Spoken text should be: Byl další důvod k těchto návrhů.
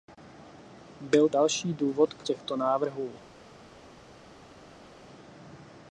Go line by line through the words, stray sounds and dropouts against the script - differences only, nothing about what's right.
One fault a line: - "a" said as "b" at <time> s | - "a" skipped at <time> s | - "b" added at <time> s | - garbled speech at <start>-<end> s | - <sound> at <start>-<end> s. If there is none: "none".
none